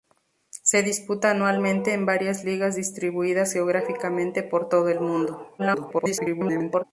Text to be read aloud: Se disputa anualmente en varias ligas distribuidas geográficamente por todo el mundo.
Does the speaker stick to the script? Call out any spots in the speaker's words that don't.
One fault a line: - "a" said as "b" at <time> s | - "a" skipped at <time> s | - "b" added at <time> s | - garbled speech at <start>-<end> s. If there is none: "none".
- garbled speech at 5.6-6.8 s